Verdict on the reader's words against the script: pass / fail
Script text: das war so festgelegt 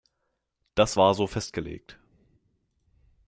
pass